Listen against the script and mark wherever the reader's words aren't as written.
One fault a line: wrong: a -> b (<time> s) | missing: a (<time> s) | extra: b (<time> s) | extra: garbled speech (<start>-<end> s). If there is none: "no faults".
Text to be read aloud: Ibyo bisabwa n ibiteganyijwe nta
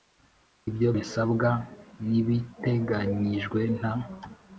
no faults